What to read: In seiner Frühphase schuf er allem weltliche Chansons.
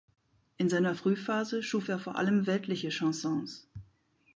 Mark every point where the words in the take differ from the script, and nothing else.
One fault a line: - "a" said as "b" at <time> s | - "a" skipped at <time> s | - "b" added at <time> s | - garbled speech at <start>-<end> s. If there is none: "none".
- "vor" added at 2.0 s